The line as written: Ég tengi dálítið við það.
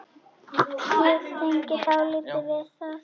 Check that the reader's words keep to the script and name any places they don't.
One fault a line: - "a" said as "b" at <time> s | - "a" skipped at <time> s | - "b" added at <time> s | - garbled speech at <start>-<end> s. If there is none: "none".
none